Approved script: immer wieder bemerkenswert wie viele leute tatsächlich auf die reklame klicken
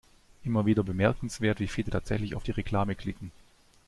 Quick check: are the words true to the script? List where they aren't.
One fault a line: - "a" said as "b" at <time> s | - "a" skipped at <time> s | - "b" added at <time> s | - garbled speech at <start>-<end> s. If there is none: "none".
- "leute" skipped at 1.9 s